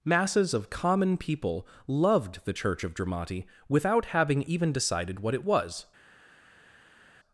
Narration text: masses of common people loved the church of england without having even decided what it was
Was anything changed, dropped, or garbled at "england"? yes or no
yes